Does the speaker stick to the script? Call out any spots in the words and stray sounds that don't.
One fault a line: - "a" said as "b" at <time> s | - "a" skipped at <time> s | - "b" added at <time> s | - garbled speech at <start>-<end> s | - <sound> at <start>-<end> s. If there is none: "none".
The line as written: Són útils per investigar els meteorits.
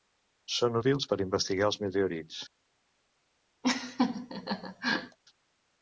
- laugh at 3.6-5.2 s